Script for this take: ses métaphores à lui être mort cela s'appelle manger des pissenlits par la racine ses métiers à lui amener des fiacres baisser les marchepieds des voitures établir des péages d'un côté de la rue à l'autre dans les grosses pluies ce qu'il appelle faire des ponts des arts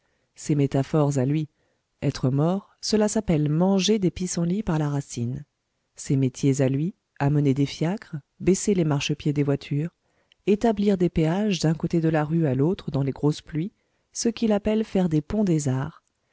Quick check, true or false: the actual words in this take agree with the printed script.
true